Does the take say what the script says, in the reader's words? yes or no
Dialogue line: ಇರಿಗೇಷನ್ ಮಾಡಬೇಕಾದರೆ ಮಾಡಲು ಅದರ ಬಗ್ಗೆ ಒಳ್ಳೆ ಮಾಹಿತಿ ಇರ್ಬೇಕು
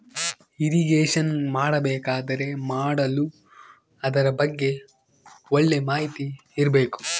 yes